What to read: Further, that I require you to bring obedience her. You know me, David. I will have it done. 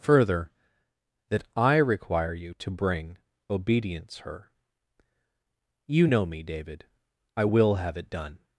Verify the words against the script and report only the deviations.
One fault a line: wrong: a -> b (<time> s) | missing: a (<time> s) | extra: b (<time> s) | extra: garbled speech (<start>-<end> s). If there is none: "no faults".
no faults